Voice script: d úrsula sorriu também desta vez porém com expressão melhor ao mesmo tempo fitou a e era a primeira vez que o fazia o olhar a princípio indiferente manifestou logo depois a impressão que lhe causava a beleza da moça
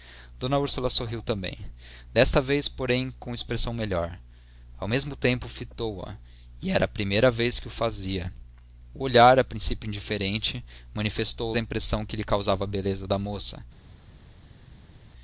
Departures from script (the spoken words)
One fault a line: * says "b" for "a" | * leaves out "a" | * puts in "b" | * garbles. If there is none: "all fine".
* leaves out "logo depois"